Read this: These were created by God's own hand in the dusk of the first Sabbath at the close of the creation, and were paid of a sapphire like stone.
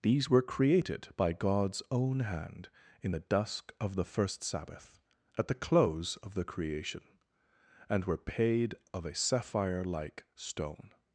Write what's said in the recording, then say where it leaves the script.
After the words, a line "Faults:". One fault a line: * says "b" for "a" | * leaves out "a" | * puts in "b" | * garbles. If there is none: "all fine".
These were created by God's own hand in the dusk of the first Sabbath at the close of the creation, and were paid of a sapphire like stone.
Faults:
all fine